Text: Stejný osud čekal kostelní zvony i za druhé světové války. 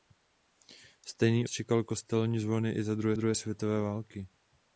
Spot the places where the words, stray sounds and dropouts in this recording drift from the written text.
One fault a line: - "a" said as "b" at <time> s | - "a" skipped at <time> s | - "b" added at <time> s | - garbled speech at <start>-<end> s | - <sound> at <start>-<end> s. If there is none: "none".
- "osud" skipped at 1.5 s
- "druhé" added at 3.1 s